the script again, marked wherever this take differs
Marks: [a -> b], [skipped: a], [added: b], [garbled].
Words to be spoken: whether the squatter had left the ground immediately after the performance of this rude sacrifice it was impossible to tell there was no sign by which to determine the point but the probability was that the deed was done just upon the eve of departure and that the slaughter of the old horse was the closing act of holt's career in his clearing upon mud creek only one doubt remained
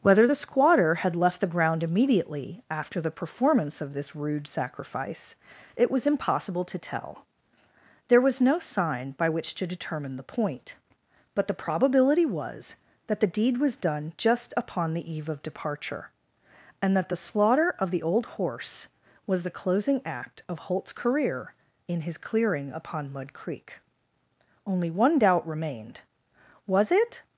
whether the squatter had left the ground immediately after the performance of this rude sacrifice it was impossible to tell there was no sign by which to determine the point but the probability was that the deed was done just upon the eve of departure and that the slaughter of the old horse was the closing act of holt's career in his clearing upon mud creek only one doubt remained [added: was it]